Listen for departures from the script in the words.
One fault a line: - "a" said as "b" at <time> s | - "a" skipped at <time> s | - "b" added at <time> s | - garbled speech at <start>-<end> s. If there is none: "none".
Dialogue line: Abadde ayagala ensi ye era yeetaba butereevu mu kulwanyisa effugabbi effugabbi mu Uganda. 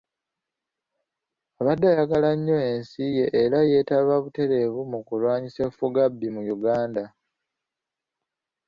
- "nnyo" added at 2.4 s
- "effugabbi" skipped at 6.3 s